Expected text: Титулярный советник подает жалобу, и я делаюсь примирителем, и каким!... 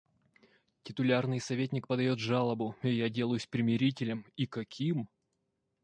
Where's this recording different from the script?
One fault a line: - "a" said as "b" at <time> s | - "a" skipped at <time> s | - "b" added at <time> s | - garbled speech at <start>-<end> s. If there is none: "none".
none